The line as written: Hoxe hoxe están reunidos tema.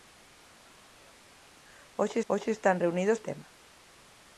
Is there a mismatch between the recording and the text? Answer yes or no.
no